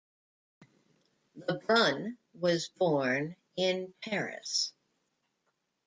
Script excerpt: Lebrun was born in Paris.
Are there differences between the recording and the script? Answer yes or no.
no